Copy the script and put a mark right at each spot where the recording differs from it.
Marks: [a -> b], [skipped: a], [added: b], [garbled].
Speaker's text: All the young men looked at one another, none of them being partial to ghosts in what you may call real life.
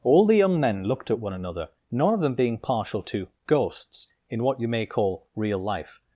All the young men looked at one another, none of them being partial to ghosts in what you may call real life.